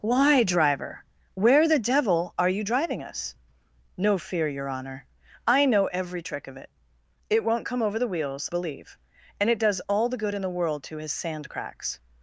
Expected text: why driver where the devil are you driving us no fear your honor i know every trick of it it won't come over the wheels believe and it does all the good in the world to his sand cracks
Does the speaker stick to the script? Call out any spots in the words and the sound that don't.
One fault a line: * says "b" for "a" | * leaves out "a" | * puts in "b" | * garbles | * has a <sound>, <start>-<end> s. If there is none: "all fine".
all fine